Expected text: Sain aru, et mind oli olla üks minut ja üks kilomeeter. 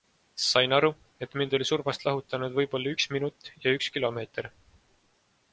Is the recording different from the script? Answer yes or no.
yes